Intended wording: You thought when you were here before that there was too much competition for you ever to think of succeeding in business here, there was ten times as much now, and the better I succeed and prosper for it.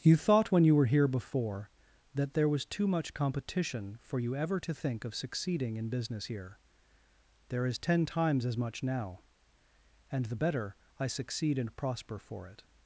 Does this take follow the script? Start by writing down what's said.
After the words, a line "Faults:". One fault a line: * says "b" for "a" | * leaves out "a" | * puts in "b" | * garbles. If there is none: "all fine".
You thought when you were here before that there was too much competition for you ever to think of succeeding in business here, there is ten times as much now, and the better I succeed and prosper for it.
Faults:
* says "is" for "was"